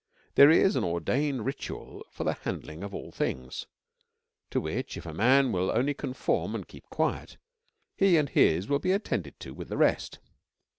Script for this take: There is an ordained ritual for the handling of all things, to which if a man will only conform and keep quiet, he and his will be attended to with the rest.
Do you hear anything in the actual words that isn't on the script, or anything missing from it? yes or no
no